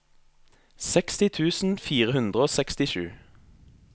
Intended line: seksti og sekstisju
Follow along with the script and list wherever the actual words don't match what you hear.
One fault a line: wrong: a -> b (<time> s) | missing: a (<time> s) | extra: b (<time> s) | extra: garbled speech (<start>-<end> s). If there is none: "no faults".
extra: tusen fire hundre (1.4 s)